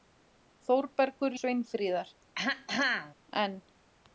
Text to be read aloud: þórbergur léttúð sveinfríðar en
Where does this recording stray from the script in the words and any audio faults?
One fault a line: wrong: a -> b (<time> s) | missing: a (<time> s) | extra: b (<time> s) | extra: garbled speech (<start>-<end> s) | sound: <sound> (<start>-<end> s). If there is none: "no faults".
missing: léttúð (1.4 s)
sound: throat clearing (2.4-3.1 s)